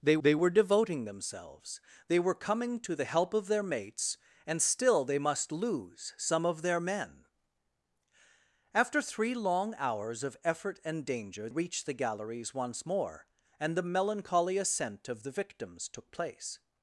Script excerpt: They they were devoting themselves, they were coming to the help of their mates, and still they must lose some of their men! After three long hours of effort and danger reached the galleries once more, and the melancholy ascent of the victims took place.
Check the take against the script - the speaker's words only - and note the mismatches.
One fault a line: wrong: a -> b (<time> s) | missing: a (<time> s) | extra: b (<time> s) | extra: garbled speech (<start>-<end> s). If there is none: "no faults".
no faults